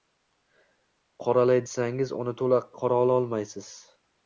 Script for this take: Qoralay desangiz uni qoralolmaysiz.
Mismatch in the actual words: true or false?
true